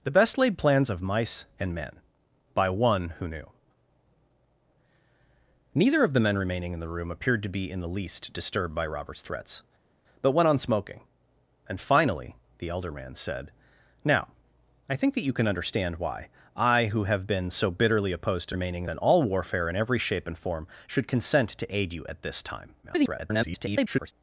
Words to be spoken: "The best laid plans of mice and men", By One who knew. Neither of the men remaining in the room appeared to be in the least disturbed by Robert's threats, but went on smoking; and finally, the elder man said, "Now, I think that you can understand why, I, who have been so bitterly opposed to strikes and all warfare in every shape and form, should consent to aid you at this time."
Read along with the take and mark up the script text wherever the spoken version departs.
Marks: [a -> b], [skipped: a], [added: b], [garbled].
"The best laid plans of mice and men", By One who knew. Neither of the men remaining in the room appeared to be in the least disturbed by Robert's threats, but went on smoking; and finally, the elder man said, "Now, I think that you can understand why, I, who have been so bitterly opposed to [strikes -> remaining] and all warfare in every shape and form, should consent to aid you at this time." [garbled]